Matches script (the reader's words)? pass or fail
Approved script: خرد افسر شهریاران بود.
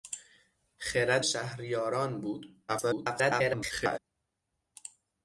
fail